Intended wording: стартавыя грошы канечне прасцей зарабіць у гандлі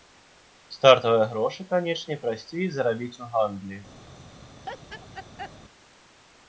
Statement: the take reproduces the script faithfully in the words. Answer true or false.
true